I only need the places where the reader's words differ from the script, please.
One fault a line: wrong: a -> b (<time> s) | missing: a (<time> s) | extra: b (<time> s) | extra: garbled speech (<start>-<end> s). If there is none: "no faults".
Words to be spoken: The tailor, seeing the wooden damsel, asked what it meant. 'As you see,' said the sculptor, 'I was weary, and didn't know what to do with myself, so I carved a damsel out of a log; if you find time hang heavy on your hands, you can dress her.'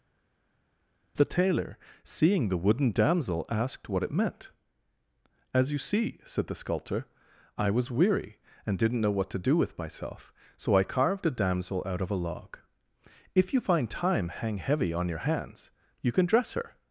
no faults